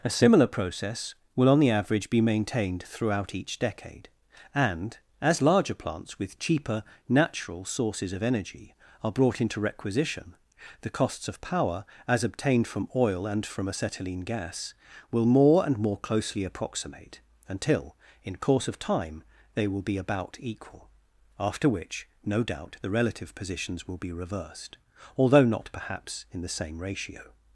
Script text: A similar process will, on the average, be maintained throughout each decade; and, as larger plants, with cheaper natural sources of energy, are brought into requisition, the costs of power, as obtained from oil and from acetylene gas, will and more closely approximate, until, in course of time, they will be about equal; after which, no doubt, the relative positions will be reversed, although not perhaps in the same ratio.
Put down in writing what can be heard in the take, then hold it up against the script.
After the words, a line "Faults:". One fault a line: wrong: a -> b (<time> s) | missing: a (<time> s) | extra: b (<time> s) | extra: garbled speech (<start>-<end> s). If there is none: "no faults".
A similar process will, on the average, be maintained throughout each decade; and, as larger plants, with cheaper natural sources of energy, are brought into requisition, the costs of power, as obtained from oil and from acetylene gas, will more and more closely approximate, until, in course of time, they will be about equal; after which, no doubt, the relative positions will be reversed, although not perhaps in the same ratio.
Faults:
extra: more (15.2 s)